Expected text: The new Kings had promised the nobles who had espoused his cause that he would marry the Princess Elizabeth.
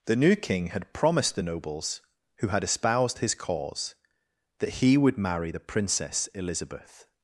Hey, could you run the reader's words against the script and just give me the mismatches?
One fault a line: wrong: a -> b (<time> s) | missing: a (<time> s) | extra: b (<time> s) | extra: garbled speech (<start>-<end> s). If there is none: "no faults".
wrong: Kings -> King (0.3 s)